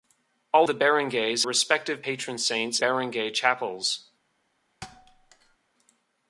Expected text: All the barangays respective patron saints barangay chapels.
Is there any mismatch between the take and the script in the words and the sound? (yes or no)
yes